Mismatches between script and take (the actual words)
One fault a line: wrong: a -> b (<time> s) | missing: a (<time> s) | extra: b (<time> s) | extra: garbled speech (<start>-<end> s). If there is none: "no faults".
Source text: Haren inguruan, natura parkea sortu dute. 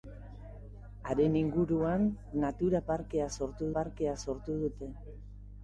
extra: parkea sortu (3.8 s)